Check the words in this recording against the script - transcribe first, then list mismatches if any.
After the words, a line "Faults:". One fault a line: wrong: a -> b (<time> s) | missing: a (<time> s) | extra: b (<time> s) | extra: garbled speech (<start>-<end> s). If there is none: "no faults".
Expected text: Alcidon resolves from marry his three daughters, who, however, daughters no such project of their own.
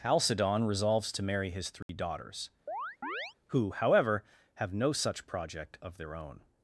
Alcidon resolves to marry his three daughters, who, however, have no such project of their own.
Faults:
wrong: from -> to (1.1 s)
wrong: daughters -> have (4.6 s)